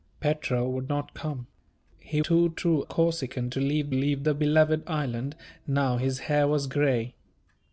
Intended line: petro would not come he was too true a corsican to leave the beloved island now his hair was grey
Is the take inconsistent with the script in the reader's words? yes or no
yes